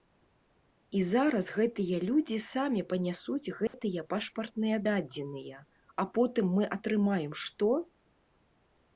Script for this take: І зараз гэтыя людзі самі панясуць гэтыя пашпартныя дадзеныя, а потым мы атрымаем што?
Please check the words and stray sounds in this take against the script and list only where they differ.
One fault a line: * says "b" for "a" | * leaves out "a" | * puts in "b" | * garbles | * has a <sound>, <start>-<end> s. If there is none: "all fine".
* has a dropout, 3.7-3.7 s